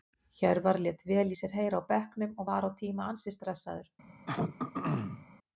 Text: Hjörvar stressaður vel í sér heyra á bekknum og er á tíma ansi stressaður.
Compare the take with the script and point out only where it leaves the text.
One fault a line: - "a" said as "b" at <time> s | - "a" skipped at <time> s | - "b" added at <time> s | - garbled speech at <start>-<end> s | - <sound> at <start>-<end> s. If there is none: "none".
- "stressaður" said as "lét" at 0.8 s
- "er" said as "var" at 2.5 s
- throat clearing at 4.3-5.3 s